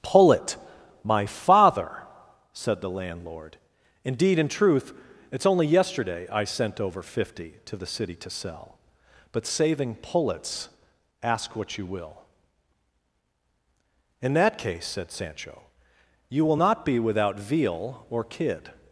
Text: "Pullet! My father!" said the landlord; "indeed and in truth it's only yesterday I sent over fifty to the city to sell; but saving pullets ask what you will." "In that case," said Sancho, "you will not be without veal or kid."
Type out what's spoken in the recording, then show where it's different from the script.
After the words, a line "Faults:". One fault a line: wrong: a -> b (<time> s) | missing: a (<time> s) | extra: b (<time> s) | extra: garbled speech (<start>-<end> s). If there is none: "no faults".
"Pullet! My father!" said the landlord; "indeed in truth it's only yesterday I sent over fifty to the city to sell; but saving pullets ask what you will." "In that case," said Sancho, "you will not be without veal or kid."
Faults:
missing: and (4.4 s)